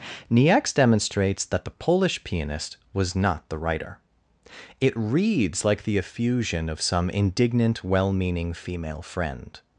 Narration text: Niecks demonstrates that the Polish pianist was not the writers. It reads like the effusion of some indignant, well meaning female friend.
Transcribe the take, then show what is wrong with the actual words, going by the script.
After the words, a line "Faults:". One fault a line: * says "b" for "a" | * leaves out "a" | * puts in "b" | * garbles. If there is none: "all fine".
Niecks demonstrates that the Polish pianist was not the writer. It reads like the effusion of some indignant, well meaning female friend.
Faults:
* says "writer" for "writers"